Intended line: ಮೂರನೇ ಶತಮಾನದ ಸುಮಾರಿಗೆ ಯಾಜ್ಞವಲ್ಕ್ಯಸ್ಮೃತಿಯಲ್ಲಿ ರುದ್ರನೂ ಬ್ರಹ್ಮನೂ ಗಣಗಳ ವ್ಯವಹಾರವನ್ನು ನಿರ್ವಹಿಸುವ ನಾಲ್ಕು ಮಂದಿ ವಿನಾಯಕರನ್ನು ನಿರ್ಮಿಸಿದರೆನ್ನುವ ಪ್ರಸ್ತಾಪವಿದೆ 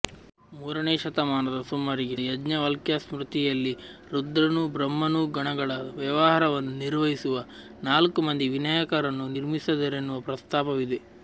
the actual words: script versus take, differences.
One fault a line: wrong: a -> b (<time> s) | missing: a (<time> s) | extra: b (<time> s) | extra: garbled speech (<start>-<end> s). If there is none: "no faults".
no faults